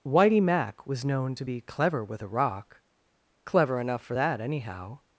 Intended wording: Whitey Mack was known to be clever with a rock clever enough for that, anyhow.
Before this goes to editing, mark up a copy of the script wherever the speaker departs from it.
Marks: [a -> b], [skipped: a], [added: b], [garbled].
Whitey Mack was known to be clever with a rock clever enough for that, anyhow.